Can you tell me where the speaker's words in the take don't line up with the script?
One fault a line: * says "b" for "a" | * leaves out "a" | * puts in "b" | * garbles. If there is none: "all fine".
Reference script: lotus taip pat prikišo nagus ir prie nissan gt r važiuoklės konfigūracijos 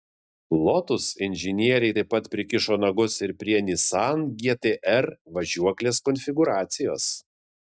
* puts in "inžinieriai"